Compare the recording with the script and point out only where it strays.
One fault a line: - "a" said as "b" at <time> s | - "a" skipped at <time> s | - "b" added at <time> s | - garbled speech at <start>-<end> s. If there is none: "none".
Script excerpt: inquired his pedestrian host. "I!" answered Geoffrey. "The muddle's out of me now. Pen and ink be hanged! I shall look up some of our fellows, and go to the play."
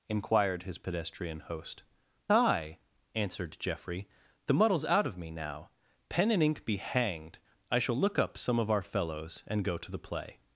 none